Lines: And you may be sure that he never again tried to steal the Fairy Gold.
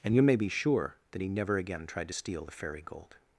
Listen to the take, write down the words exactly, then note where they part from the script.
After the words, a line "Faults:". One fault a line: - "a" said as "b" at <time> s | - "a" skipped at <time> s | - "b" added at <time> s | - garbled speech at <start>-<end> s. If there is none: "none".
And you may be sure that he never again tried to steal the Fairy Gold.
Faults:
none